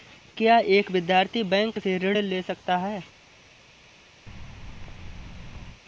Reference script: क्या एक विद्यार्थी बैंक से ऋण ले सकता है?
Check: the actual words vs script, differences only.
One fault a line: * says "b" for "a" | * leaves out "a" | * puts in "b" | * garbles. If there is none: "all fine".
all fine